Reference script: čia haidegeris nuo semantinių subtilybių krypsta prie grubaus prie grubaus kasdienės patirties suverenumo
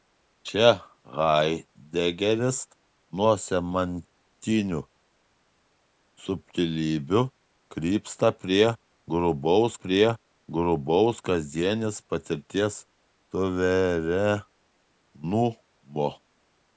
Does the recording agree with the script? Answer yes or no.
yes